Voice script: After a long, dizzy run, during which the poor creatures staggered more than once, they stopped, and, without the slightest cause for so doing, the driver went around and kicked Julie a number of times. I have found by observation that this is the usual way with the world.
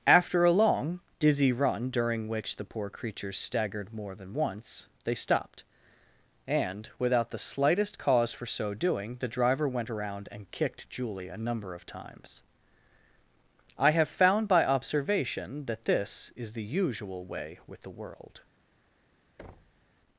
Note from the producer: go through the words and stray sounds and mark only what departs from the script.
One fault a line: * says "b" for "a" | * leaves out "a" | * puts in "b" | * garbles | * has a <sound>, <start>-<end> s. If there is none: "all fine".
* has a thud, 19.4-19.8 s